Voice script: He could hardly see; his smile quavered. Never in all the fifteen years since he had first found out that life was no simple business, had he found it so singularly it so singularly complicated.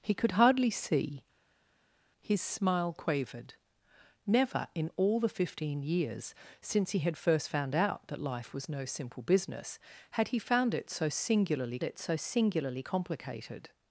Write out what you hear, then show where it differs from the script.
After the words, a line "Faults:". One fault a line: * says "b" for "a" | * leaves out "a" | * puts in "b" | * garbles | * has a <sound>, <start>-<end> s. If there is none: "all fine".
He could hardly see; his smile quavered. Never in all the fifteen years since he had first found out that life was no simple business, had he found it so singularly it so singularly complicated.
Faults:
all fine